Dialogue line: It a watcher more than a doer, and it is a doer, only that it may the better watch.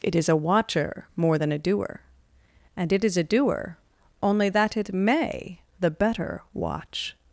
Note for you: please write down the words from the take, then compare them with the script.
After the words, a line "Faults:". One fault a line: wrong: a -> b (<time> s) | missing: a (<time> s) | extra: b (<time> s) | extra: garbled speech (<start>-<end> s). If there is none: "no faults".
It is a watcher more than a doer, and it is a doer, only that it may the better watch.
Faults:
extra: is (0.1 s)